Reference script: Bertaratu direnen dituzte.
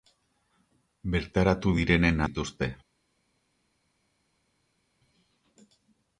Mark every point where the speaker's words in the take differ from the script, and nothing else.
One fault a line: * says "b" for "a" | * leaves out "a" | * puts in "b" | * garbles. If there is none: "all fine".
all fine